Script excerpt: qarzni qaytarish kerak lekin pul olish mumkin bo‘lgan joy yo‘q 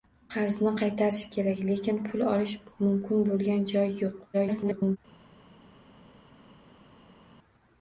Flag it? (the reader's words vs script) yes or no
yes